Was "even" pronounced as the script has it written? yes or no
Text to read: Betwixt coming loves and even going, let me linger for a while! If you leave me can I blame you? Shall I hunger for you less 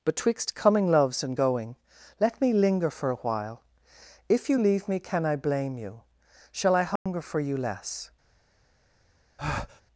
no